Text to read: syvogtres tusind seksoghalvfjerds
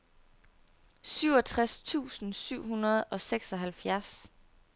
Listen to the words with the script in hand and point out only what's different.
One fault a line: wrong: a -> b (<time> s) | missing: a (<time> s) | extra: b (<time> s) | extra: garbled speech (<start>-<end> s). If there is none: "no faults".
extra: syv hundrede og (2.3 s)